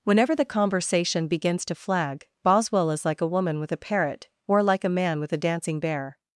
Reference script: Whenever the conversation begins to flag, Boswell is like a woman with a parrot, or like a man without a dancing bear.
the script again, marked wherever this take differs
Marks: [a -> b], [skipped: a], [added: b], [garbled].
Whenever the conversation begins to flag, Boswell is like a woman with a parrot, or like a man [without -> with] a dancing bear.